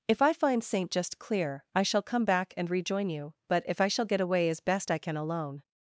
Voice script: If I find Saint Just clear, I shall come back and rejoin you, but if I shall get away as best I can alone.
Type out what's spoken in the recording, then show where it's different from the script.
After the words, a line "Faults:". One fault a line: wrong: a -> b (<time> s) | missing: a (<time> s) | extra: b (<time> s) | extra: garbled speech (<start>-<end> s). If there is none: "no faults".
If I find Saint Just clear, I shall come back and rejoin you, but if I shall get away as best I can alone.
Faults:
no faults